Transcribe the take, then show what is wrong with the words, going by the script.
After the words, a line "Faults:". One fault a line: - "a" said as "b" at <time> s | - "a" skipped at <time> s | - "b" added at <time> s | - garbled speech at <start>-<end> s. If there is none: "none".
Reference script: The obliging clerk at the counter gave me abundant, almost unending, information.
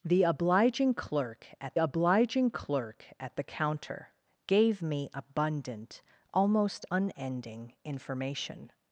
The obliging clerk at obliging clerk at the counter gave me abundant, almost unending, information.
Faults:
- "obliging clerk at" added at 1.8 s